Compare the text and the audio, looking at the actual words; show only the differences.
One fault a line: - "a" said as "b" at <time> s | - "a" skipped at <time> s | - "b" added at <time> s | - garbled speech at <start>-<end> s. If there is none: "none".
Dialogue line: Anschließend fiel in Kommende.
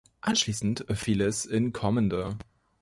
- "es" added at 1.2 s